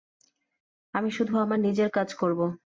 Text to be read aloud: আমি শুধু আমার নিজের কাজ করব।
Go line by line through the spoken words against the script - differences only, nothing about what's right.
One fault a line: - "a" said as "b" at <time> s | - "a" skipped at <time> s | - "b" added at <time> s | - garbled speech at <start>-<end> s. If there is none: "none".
none